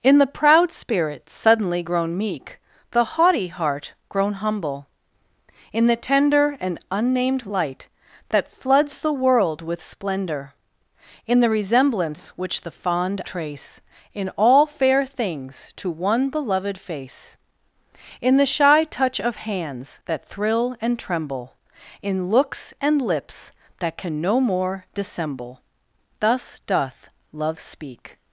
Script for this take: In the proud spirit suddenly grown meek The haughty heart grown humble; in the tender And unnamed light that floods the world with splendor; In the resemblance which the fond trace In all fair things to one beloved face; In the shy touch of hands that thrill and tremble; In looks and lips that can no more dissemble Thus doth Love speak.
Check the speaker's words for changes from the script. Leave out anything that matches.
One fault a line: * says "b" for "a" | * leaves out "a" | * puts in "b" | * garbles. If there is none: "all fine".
all fine